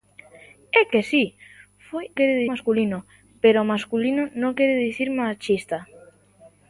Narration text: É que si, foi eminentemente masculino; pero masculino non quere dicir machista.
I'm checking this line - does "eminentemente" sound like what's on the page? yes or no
no